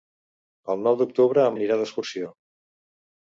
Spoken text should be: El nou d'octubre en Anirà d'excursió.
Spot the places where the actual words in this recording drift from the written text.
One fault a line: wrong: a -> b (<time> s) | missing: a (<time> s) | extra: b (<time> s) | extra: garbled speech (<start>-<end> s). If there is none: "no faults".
no faults